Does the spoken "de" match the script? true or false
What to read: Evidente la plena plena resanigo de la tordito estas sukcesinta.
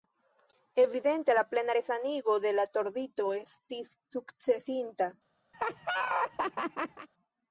true